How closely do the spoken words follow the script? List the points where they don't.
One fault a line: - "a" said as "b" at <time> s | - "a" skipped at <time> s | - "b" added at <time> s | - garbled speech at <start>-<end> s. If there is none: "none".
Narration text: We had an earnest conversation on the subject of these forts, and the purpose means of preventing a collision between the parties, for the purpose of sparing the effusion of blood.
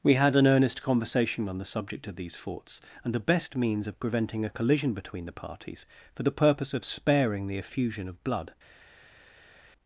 - "purpose" said as "best" at 3.2 s